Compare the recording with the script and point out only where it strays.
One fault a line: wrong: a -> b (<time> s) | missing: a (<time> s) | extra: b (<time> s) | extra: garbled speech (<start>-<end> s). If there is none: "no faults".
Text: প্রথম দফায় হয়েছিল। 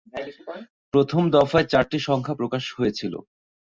extra: চারটি সংখ্যা প্রকাশ (1.7 s)